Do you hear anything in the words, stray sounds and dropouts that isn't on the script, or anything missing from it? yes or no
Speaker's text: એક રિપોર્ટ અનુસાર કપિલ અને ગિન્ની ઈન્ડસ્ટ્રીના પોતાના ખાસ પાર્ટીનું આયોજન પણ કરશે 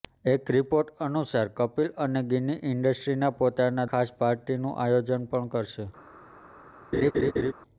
yes